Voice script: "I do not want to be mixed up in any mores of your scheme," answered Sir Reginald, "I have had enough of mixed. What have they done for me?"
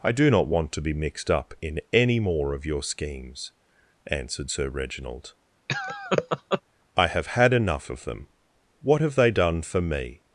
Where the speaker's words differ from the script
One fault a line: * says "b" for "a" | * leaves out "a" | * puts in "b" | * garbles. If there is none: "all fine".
* says "more" for "mores"
* says "schemes" for "scheme"
* says "them" for "mixed"